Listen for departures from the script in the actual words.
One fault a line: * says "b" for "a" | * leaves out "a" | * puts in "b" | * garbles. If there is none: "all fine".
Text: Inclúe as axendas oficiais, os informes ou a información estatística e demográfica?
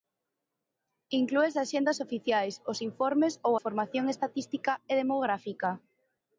* leaves out "a"